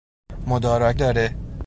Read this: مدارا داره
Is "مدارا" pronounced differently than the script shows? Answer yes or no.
no